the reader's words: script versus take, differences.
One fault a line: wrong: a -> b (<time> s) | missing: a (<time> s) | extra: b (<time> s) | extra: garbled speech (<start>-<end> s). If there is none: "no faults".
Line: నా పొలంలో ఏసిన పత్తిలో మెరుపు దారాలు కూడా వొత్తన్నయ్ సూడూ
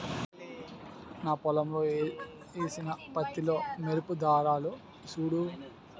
missing: కూడా వొత్తన్నయ్ (4.7 s)